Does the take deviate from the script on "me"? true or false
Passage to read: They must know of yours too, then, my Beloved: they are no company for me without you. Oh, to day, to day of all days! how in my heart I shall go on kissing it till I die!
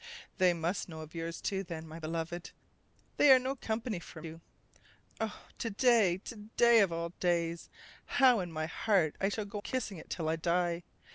true